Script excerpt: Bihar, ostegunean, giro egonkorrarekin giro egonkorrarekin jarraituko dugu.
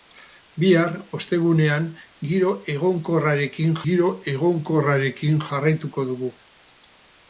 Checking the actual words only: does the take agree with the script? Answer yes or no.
yes